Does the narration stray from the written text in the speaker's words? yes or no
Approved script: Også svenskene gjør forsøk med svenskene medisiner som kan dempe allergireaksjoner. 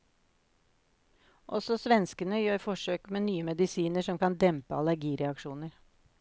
yes